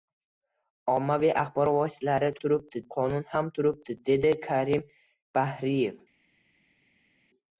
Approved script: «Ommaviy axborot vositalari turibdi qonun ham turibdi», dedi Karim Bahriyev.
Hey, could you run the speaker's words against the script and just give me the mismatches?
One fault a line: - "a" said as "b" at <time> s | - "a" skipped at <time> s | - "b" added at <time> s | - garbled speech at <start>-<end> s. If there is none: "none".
none